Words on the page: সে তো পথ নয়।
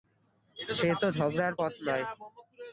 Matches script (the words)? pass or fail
fail